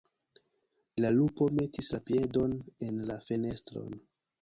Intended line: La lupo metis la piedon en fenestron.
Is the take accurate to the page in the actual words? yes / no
no